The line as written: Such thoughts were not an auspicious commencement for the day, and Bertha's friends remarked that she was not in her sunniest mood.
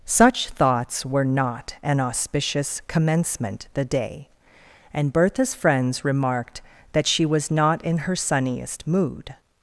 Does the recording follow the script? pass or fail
fail